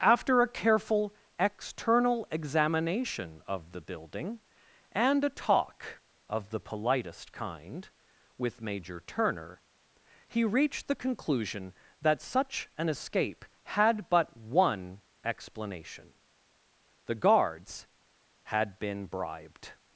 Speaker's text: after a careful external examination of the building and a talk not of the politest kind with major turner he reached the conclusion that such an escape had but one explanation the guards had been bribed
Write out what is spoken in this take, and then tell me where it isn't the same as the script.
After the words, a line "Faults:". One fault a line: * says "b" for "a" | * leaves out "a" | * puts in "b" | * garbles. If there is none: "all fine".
after a careful external examination of the building and a talk of the politest kind with major turner he reached the conclusion that such an escape had but one explanation the guards had been bribed
Faults:
* leaves out "not"